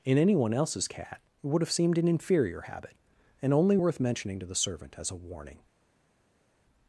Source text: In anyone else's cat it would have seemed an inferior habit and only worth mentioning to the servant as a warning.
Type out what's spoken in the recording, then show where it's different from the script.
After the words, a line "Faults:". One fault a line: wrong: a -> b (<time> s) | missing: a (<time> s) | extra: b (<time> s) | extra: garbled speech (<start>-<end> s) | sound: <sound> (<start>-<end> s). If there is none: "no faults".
In anyone else's cat it would have seemed an inferior habit and only worth mentioning to the servant as a warning.
Faults:
no faults